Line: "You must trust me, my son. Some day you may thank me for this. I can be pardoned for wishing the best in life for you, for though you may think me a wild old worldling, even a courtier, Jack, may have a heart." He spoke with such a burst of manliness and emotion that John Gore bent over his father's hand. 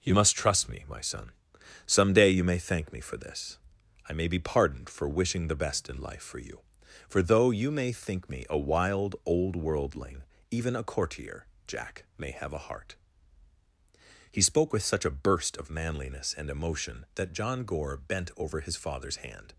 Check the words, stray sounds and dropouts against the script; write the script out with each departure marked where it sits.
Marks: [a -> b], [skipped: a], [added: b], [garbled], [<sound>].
"You must trust me, my son. Some day you may thank me for this. I [can -> may] be pardoned for wishing the best in life for you, for though you may think me a wild old worldling, even a courtier, Jack, may have a heart." He spoke with such a burst of manliness and emotion that John Gore bent over his father's hand.